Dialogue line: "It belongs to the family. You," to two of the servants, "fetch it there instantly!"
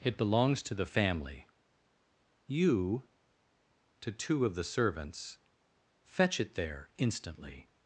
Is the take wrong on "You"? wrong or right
right